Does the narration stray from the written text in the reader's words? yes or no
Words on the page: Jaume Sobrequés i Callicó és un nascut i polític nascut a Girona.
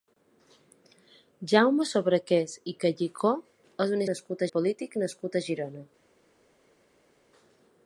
no